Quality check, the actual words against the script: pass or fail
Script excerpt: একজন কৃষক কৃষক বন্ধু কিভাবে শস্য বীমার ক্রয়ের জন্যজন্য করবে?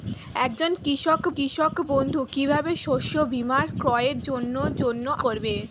pass